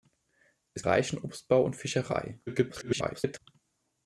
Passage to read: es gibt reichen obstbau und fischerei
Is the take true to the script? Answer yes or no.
no